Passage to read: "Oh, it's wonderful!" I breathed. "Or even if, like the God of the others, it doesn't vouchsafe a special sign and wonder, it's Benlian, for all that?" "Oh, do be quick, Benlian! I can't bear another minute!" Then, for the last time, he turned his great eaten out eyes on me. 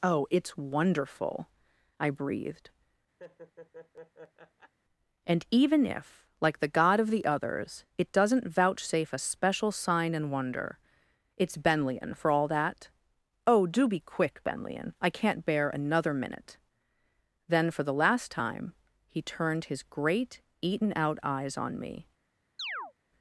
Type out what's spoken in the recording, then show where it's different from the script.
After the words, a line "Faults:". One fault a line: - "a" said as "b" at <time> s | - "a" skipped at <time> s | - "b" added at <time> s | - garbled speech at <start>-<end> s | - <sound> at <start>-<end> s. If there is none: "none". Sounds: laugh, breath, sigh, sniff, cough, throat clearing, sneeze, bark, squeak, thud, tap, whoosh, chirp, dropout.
"Oh, it's wonderful!" I breathed. "And even if, like the God of the others, it doesn't vouchsafe a special sign and wonder, it's Benlian, for all that?" "Oh, do be quick, Benlian! I can't bear another minute!" Then, for the last time, he turned his great eaten out eyes on me.
Faults:
- laugh at 3.2-4.7 s
- "Or" said as "And" at 5.2 s
- chirp at 22.6-22.9 s